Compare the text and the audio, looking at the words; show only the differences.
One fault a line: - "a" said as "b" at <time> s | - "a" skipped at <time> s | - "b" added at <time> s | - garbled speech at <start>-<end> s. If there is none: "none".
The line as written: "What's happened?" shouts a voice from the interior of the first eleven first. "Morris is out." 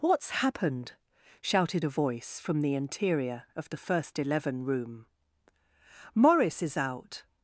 - "shouts" said as "shouted" at 1.4 s
- "first" said as "room" at 4.6 s